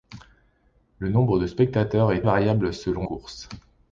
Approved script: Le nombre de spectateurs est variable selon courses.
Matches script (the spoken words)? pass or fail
pass